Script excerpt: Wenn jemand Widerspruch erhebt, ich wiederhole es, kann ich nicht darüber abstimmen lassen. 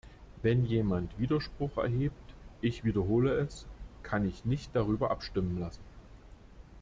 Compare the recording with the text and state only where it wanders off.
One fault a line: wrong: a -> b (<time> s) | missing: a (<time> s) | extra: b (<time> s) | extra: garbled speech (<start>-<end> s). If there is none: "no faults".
no faults